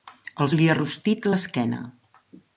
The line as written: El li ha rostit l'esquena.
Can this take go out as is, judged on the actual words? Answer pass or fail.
pass